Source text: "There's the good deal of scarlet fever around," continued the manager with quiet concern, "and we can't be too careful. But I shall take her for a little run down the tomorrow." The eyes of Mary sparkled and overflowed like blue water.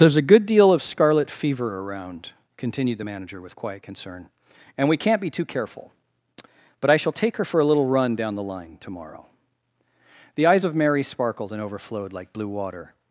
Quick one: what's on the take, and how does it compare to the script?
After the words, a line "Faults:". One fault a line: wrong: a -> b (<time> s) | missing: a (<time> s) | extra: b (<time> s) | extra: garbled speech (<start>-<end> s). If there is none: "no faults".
"There's a good deal of scarlet fever around," continued the manager with quiet concern, "and we can't be too careful. But I shall take her for a little run down the line tomorrow." The eyes of Mary sparkled and overflowed like blue water.
Faults:
wrong: the -> a (0.2 s)
extra: line (8.4 s)